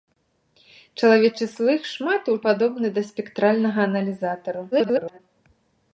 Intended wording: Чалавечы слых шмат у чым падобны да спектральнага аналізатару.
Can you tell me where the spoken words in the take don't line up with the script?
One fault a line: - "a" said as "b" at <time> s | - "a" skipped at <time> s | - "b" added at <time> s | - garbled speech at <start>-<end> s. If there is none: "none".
- "чым" skipped at 2.4 s
- garbled speech at 4.7-5.2 s